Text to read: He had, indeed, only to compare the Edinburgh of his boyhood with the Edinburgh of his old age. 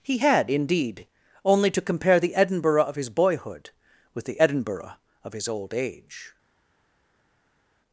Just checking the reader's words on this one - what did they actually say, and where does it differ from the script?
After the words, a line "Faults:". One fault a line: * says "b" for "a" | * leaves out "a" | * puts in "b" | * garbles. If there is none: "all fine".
He had, indeed, only to compare the Edinburgh of his boyhood with the Edinburgh of his old age.
Faults:
all fine